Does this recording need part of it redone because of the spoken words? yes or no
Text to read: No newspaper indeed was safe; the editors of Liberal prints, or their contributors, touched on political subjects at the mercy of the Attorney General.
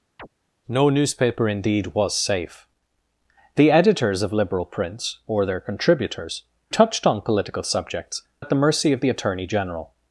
no